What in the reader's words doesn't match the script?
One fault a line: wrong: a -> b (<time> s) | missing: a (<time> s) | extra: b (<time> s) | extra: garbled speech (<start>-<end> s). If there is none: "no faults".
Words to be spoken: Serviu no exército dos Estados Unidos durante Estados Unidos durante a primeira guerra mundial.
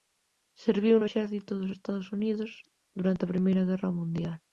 missing: Estados Unidos durante (3.2 s)